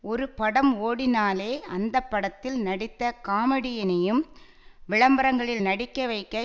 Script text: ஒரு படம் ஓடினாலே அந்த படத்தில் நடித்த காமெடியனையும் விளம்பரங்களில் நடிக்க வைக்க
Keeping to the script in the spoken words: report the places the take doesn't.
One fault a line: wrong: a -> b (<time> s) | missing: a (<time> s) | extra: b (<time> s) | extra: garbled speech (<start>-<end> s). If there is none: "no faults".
no faults